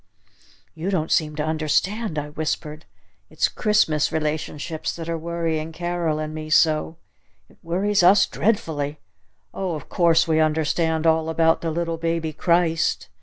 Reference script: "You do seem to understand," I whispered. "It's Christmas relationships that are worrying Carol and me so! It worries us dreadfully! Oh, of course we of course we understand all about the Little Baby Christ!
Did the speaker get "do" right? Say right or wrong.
wrong